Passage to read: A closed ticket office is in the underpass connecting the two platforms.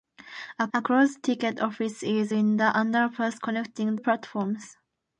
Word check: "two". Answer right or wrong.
wrong